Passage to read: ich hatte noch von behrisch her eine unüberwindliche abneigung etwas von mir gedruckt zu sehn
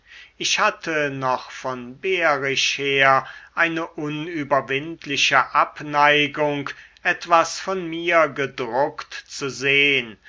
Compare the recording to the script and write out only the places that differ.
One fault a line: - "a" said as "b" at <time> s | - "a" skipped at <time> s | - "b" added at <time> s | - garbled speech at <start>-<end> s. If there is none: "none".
none